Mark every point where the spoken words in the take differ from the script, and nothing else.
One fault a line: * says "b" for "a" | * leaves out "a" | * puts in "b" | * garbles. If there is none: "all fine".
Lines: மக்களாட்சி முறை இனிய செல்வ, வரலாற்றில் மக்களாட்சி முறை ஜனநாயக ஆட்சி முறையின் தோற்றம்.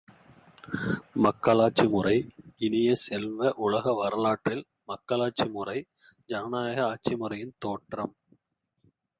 * puts in "உலக"